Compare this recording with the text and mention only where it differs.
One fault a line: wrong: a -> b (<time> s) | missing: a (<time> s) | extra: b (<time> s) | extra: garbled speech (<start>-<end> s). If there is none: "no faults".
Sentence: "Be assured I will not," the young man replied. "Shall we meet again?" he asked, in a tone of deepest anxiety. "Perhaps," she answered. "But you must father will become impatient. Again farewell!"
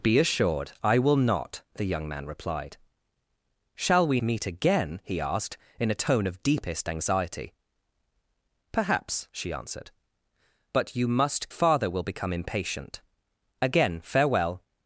no faults